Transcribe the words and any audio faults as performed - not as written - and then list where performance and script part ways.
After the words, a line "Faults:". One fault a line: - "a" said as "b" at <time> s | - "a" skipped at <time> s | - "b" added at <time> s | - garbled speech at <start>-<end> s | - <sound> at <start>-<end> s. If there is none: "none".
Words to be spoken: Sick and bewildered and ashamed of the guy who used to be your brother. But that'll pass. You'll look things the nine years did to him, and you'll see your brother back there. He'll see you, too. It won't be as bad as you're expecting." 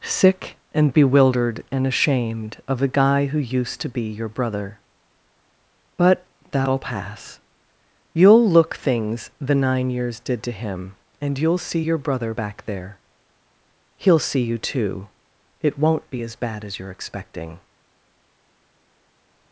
Sick and bewildered and ashamed of the guy who used to be your brother. But that'll pass. You'll look things the nine years did to him, and you'll see your brother back there. He'll see you, too. It won't be as bad as you're expecting."
Faults:
none